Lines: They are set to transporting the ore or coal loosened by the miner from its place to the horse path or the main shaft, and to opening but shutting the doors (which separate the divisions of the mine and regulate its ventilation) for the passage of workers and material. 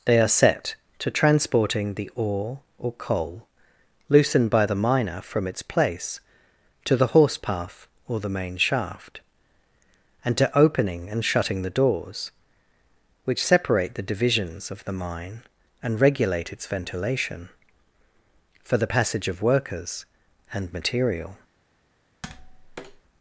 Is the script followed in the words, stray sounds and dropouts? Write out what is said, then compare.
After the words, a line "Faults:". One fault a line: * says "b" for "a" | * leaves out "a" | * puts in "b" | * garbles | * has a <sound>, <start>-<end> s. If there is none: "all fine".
They are set to transporting the ore or coal loosened by the miner from its place to the horse path or the main shaft, and to opening and shutting the doors (which separate the divisions of the mine and regulate its ventilation) for the passage of workers and material.
Faults:
* says "and" for "but"
* has a tap, 22.2-23.0 s